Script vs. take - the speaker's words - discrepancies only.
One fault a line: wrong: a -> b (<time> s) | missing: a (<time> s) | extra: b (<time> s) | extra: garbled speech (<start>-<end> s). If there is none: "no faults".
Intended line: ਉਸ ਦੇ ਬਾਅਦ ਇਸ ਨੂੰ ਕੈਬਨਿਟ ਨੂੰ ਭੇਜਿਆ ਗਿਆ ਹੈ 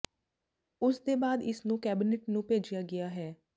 no faults